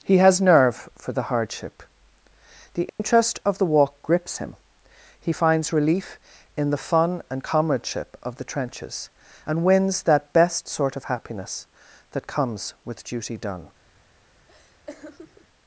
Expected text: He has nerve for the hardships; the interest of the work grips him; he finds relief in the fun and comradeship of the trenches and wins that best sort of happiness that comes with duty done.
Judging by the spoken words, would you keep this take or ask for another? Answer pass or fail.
fail